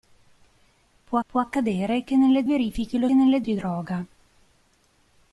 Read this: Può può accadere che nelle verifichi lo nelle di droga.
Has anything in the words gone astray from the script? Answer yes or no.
no